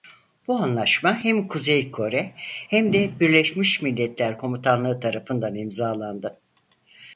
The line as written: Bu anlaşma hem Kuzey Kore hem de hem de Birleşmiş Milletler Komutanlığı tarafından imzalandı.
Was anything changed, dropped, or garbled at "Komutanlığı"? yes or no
no